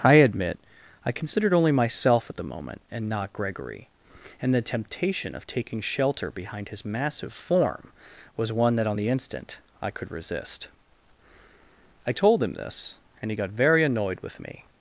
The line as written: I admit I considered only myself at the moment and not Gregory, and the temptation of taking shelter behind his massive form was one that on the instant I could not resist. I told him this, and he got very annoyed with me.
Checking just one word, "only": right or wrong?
right